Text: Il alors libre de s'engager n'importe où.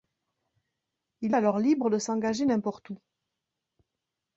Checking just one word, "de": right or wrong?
right